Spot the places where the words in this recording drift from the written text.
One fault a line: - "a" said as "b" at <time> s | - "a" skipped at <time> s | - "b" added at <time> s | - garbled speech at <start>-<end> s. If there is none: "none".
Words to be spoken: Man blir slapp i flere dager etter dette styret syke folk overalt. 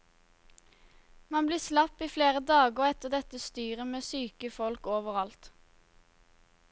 - "med" added at 3.9 s